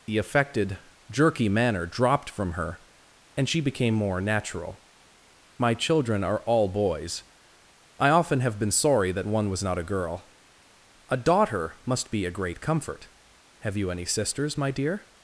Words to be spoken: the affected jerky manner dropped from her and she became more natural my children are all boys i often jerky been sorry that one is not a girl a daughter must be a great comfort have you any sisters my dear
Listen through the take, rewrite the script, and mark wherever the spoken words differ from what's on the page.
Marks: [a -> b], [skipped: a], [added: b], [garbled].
the affected jerky manner dropped from her and she became more natural my children are all boys i often [jerky -> have] been sorry that one [is -> was] not a girl a daughter must be a great comfort have you any sisters my dear